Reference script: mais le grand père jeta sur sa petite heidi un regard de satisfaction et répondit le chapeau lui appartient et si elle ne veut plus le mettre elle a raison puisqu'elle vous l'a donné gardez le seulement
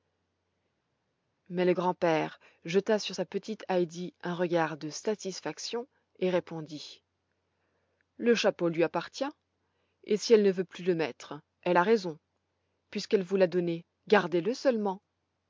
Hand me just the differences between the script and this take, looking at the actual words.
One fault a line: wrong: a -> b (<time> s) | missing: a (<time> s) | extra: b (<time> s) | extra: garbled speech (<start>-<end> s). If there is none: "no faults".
no faults